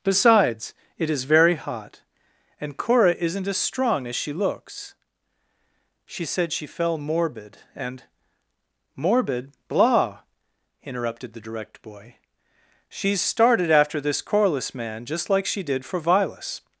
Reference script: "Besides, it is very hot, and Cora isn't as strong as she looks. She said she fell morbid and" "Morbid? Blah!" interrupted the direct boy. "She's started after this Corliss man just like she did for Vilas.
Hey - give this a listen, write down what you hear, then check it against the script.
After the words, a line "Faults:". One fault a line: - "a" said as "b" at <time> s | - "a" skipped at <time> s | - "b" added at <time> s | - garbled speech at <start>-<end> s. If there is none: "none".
"Besides, it is very hot, and Cora isn't as strong as she looks. She said she fell morbid and" "Morbid? Blah!" interrupted the direct boy. "She's started after this Corliss man just like she did for Vilas.
Faults:
none